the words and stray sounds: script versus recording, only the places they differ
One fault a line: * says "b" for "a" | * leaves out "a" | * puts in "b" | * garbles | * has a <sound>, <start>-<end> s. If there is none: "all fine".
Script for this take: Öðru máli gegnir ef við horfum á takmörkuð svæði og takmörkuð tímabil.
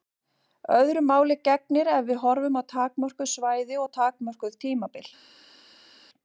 all fine